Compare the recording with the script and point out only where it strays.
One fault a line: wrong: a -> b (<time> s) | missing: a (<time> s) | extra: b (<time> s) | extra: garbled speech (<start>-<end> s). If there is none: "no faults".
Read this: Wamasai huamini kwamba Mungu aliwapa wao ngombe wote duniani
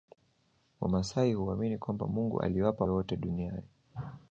missing: wao ngombe (2.9 s)